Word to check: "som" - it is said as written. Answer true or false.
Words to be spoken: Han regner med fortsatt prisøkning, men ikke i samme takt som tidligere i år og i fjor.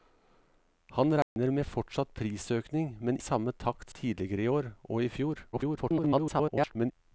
false